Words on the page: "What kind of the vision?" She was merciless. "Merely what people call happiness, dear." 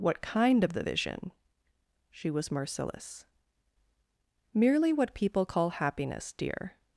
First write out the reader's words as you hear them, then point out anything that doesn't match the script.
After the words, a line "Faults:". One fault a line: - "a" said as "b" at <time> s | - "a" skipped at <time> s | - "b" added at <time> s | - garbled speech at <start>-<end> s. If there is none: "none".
"What kind of the vision?" She was merciless. "Merely what people call happiness, dear."
Faults:
none